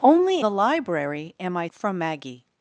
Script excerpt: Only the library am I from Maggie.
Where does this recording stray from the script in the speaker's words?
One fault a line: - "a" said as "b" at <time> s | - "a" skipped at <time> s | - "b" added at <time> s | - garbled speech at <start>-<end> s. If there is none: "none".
none